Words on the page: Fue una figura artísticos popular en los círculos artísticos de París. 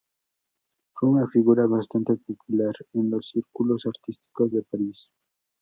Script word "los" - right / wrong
right